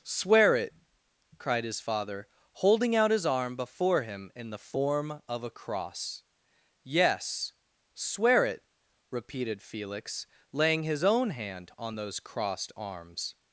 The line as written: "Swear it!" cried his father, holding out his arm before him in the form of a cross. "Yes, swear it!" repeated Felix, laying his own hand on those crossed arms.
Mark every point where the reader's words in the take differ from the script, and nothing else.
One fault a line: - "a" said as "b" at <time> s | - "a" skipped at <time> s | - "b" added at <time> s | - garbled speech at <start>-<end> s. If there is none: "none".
none